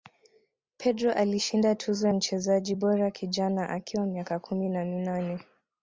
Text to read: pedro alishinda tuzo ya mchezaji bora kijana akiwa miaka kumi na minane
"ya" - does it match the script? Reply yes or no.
no